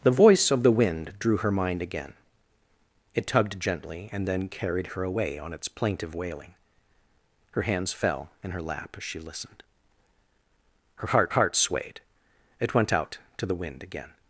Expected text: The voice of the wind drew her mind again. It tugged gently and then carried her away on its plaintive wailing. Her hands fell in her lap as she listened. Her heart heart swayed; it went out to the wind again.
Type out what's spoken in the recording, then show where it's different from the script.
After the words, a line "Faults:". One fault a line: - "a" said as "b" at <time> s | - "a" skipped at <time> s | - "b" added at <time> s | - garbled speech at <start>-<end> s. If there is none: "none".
The voice of the wind drew her mind again. It tugged gently and then carried her away on its plaintive wailing. Her hands fell in her lap as she listened. Her heart heart swayed; it went out to the wind again.
Faults:
none